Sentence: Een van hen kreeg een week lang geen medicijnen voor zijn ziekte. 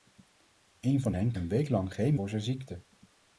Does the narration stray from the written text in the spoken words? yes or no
yes